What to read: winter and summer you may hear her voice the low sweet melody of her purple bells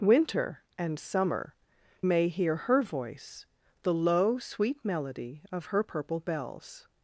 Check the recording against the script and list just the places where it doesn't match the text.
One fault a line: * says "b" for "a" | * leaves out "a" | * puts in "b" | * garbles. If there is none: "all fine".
* leaves out "you"